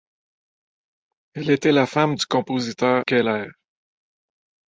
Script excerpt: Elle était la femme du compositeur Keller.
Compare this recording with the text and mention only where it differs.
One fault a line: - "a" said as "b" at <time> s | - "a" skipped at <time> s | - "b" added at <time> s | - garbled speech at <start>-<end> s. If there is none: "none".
none